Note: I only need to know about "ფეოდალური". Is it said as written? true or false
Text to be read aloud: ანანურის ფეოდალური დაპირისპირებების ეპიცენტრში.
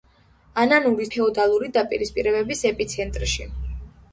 true